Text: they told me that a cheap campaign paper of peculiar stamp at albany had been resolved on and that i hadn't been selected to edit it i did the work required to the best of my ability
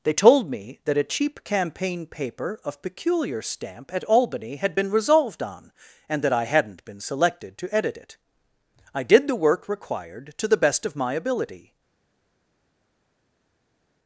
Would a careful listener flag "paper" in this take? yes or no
no